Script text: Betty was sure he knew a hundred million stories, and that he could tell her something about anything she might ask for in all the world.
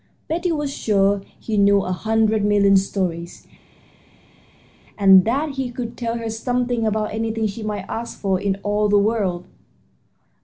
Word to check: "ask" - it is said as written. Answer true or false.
true